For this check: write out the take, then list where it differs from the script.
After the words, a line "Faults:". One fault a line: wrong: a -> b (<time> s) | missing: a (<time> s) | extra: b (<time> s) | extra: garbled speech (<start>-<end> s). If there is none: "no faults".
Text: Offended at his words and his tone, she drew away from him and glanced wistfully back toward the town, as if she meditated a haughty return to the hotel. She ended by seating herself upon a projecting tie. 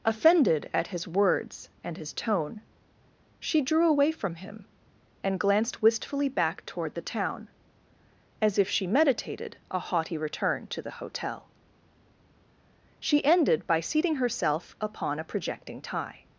Offended at his words and his tone, she drew away from him and glanced wistfully back toward the town, as if she meditated a haughty return to the hotel. She ended by seating herself upon a projecting tie.
Faults:
no faults